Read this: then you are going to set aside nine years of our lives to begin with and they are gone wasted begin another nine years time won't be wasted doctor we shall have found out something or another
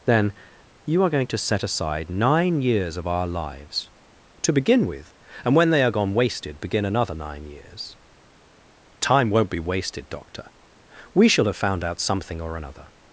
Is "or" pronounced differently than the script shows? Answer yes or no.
no